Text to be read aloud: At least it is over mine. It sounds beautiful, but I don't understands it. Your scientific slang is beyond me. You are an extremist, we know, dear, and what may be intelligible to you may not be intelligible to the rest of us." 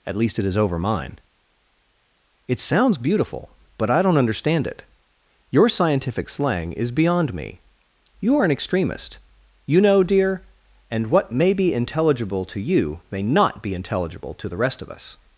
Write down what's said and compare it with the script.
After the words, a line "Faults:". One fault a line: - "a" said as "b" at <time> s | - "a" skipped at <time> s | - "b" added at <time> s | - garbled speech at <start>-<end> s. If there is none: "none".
At least it is over mine. It sounds beautiful, but I don't understand it. Your scientific slang is beyond me. You are an extremist, you know, dear, and what may be intelligible to you may not be intelligible to the rest of us."
Faults:
- "understands" said as "understand" at 4.2 s
- "we" said as "you" at 9.7 s